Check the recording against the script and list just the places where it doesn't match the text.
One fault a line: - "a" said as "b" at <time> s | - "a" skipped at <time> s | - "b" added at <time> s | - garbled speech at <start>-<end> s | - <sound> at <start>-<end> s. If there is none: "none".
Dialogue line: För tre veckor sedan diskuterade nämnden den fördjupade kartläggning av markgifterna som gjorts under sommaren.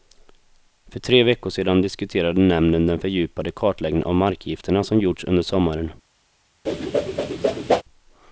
- whoosh at 6.7-7.8 s